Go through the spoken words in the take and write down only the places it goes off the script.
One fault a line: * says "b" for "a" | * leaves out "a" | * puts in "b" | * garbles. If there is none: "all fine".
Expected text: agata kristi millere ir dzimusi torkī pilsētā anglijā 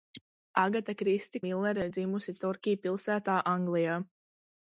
all fine